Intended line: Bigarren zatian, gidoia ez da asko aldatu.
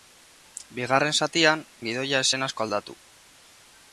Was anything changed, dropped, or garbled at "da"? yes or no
yes